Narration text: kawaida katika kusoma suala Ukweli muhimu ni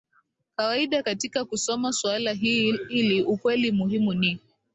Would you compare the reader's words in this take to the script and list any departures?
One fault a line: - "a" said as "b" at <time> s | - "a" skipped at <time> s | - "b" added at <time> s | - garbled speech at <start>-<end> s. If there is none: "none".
- "hili" added at 2.9 s